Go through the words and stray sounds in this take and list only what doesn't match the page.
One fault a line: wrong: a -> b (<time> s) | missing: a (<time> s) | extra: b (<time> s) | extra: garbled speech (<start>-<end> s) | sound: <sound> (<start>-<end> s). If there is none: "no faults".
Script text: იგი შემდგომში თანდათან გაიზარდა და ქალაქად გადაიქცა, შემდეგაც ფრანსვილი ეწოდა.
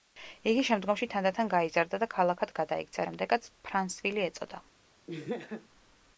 sound: laugh (5.1-5.7 s)